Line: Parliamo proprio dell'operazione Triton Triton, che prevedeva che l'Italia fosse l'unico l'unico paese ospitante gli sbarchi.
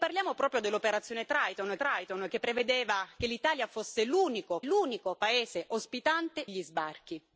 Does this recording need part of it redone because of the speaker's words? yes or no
no